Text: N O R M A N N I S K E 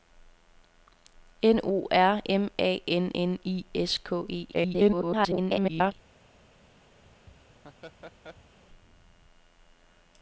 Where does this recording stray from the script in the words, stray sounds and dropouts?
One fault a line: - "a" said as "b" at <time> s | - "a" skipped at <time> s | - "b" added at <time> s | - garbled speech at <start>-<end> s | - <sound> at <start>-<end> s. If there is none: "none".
- garbled speech at 4.5-5.9 s
- laugh at 7.0-8.6 s